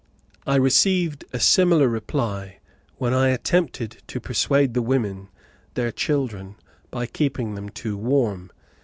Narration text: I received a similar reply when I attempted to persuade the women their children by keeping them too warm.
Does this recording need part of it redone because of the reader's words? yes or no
no